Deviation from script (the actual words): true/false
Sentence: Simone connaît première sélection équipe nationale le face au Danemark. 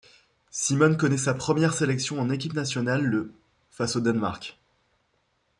true